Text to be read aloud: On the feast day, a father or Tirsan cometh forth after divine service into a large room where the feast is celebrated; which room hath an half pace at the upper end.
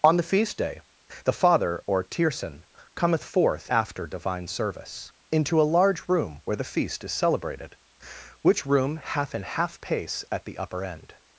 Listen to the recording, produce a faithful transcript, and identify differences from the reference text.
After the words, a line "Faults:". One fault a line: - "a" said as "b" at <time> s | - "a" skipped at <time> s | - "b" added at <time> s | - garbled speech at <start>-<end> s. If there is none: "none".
On the feast day, the father or Tirsan cometh forth after divine service into a large room where the feast is celebrated; which room hath an half pace at the upper end.
Faults:
- "a" said as "the" at 1.2 s